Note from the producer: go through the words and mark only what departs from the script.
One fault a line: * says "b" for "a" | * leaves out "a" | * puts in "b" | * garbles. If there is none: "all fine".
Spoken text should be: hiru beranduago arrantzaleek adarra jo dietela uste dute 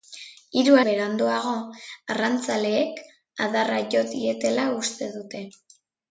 all fine